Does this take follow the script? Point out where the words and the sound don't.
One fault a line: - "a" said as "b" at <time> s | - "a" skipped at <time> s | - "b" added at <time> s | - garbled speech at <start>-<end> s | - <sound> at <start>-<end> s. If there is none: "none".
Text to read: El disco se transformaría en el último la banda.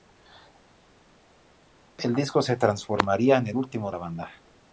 none